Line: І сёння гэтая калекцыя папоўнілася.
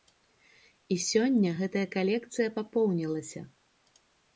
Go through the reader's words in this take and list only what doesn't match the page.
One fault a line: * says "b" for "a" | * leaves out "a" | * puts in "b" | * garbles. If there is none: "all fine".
all fine